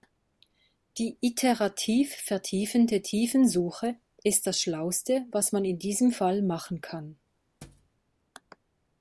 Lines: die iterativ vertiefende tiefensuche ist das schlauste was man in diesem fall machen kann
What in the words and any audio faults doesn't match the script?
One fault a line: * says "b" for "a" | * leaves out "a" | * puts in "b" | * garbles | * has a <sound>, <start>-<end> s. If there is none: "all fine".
* has a thud, 7.6-7.9 s